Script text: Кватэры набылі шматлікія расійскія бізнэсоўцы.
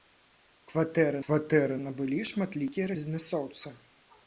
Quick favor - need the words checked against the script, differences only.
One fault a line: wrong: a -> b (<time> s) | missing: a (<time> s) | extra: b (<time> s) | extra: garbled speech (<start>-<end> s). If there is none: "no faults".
extra: кватэры (1.2 s)
missing: расійскія (2.9 s)